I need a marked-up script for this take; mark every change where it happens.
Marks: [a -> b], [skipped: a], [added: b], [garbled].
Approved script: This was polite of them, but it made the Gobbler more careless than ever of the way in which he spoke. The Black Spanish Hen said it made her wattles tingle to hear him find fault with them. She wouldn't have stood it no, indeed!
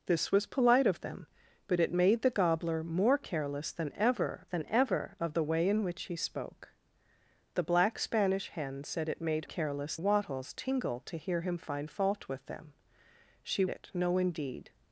This was polite of them, but it made the Gobbler more careless than ever [added: than ever] of the way in which he spoke. The Black Spanish Hen said it made [her -> careless] wattles tingle to hear him find fault with them. She [skipped: wouldn't have stood] it no, indeed!